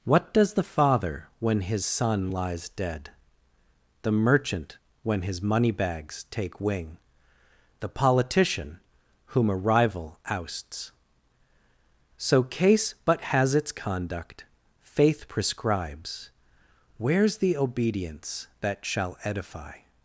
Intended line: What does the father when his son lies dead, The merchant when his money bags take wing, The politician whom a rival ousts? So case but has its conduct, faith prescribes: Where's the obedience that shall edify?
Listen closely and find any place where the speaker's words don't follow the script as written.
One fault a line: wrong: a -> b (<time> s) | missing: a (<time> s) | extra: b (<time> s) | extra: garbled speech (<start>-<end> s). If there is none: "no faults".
no faults